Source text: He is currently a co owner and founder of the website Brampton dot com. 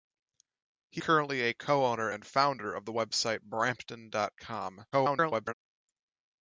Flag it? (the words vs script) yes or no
yes